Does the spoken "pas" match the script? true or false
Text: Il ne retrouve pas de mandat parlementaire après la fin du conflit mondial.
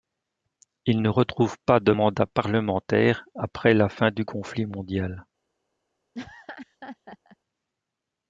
true